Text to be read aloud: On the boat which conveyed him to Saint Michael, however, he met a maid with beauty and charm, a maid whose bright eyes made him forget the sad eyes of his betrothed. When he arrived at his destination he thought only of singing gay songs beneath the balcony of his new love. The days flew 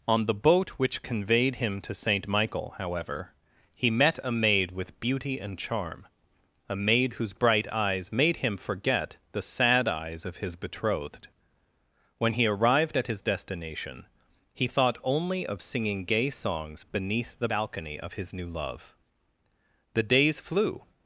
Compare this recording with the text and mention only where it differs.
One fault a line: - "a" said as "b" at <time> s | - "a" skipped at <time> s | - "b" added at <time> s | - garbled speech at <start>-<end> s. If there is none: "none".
none